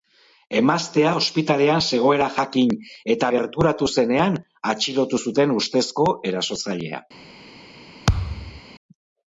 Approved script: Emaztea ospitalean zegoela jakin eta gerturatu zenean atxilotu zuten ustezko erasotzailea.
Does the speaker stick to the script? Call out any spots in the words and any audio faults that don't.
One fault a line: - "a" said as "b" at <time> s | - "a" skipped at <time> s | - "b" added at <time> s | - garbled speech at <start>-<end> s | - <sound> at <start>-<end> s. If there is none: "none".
- thud at 8.1-8.6 s